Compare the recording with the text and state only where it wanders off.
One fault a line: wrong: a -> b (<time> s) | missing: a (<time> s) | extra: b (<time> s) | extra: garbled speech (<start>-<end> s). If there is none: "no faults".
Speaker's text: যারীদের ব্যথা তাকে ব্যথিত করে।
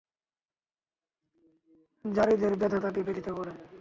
no faults